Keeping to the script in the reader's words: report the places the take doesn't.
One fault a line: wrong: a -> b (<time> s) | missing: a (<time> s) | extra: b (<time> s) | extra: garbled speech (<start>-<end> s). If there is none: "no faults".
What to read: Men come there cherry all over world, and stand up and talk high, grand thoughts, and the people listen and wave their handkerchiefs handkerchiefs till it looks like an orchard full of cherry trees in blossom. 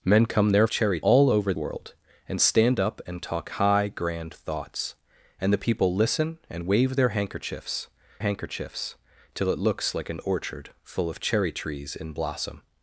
no faults